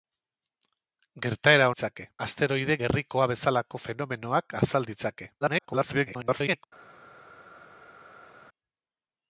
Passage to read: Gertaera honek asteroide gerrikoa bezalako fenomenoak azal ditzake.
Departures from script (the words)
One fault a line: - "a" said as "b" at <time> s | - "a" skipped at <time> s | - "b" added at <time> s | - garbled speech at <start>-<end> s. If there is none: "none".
- "honek" said as "ditzake" at 1.7 s
- garbled speech at 5.4-6.6 s